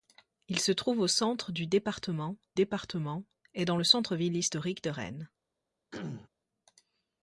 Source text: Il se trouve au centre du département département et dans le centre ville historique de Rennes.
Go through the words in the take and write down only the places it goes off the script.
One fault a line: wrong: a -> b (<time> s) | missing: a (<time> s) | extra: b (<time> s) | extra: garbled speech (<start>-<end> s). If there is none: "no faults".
no faults